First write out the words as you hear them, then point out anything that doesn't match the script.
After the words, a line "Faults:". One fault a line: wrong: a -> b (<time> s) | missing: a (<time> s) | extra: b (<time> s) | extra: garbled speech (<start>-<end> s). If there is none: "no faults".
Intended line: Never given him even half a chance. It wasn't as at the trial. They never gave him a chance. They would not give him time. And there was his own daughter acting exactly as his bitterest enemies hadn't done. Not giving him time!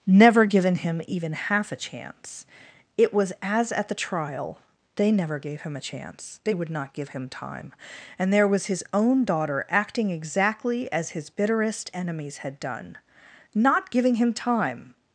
Never given him even half a chance. It was as at the trial. They never gave him a chance. They would not give him time. And there was his own daughter acting exactly as his bitterest enemies had done. Not giving him time!
Faults:
wrong: wasn't -> was (3.1 s)
wrong: hadn't -> had (12.4 s)